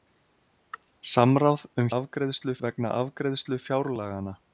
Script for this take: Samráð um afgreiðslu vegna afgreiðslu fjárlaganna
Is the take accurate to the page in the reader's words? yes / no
yes